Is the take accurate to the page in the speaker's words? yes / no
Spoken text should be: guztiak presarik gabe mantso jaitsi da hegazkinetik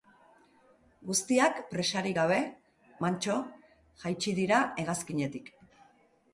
no